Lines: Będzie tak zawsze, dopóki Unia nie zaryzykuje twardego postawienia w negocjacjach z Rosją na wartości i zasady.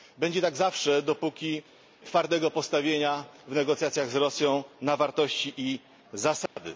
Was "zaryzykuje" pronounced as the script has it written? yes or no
no